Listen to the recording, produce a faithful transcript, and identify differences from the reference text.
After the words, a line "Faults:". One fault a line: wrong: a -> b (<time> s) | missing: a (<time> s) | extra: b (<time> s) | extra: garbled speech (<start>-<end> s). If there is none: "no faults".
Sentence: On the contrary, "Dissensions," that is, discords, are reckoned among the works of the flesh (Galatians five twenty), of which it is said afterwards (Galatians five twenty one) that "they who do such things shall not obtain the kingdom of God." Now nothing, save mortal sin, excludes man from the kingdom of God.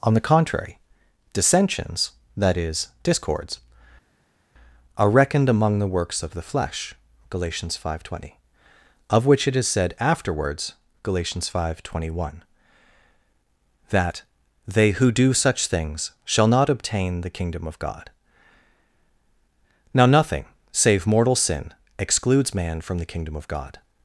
On the contrary, "Dissensions," that is, discords, are reckoned among the works of the flesh (Galatians five twenty), of which it is said afterwards (Galatians five twenty one) that "they who do such things shall not obtain the kingdom of God." Now nothing, save mortal sin, excludes man from the kingdom of God.
Faults:
no faults